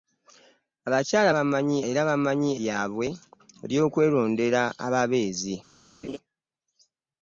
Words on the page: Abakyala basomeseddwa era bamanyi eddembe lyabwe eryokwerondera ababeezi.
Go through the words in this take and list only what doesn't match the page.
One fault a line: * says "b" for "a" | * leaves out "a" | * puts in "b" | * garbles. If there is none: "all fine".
* says "bamanyi" for "basomeseddwa"
* leaves out "eddembe"